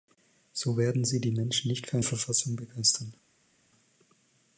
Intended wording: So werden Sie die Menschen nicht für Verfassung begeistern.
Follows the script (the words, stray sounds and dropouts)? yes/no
yes